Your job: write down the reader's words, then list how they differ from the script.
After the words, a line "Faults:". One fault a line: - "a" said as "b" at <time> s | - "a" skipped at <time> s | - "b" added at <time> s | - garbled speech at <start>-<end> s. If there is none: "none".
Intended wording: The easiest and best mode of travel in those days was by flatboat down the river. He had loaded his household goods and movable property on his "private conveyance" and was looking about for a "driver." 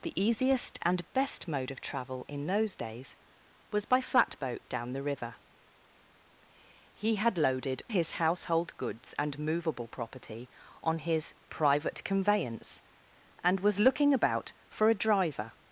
The easiest and best mode of travel in those days was by flatboat down the river. He had loaded his household goods and movable property on his "private conveyance" and was looking about for a "driver."
Faults:
none